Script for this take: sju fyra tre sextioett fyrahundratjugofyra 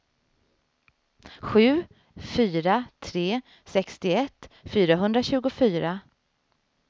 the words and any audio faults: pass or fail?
pass